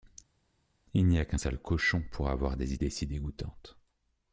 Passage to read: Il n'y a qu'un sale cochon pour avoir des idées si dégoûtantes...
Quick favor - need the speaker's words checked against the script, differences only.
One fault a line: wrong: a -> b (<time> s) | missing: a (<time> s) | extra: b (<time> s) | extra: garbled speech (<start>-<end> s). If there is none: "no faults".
no faults